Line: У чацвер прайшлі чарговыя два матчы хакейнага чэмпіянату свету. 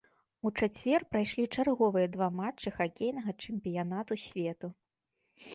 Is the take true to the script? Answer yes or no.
yes